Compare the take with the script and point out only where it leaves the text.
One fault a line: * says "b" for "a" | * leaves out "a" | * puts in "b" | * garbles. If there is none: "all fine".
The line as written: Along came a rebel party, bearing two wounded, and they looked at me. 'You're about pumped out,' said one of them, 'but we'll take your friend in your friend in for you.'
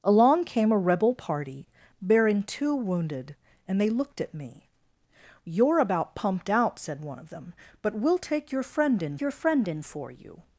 all fine